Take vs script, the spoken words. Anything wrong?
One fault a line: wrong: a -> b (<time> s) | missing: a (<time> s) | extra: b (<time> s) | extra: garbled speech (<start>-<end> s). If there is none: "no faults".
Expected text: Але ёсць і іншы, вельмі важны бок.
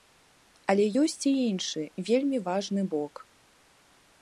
no faults